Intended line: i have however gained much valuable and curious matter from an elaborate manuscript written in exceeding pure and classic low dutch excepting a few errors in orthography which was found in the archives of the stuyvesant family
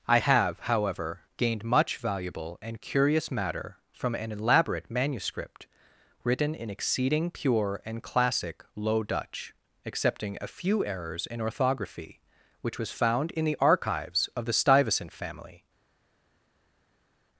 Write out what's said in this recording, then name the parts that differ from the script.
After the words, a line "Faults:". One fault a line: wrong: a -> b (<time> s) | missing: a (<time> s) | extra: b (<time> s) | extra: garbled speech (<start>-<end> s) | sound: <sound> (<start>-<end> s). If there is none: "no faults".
i have however gained much valuable and curious matter from an elaborate manuscript written in exceeding pure and classic low dutch excepting a few errors in orthography which was found in the archives of the stuyvesant family
Faults:
no faults